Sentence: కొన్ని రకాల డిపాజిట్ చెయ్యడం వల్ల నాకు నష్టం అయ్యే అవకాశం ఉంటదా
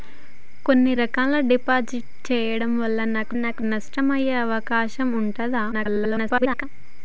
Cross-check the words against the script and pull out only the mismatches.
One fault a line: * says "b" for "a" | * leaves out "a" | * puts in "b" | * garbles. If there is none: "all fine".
* puts in "నాకు"
* garbles